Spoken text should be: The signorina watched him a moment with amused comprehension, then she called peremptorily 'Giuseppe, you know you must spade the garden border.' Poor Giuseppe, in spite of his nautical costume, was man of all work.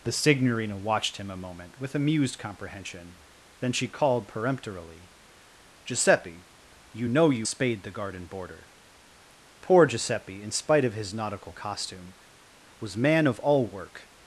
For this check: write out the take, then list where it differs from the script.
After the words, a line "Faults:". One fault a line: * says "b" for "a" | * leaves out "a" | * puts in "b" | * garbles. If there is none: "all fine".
The signorina watched him a moment with amused comprehension, then she called peremptorily 'Giuseppe, you know you spade the garden border.' Poor Giuseppe, in spite of his nautical costume, was man of all work.
Faults:
* leaves out "must"